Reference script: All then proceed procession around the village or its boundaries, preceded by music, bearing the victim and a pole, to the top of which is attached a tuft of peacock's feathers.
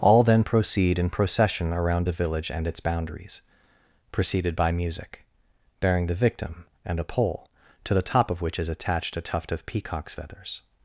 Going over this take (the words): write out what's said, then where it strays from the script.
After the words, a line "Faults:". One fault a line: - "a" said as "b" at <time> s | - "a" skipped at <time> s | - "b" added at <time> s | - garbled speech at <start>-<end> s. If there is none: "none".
All then proceed in procession around the village and its boundaries, preceded by music, bearing the victim and a pole, to the top of which is attached a tuft of peacock's feathers.
Faults:
- "in" added at 1.0 s
- "or" said as "and" at 2.5 s